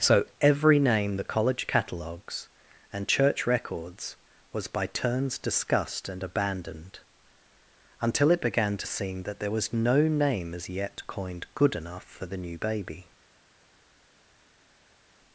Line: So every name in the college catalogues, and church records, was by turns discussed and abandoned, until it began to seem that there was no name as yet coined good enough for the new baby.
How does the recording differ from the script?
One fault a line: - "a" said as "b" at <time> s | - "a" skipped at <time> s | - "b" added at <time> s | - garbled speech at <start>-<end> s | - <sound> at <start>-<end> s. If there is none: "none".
- "in" skipped at 1.2 s